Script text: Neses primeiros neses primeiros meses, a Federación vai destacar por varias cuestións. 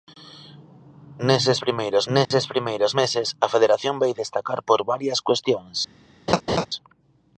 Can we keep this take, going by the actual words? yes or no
yes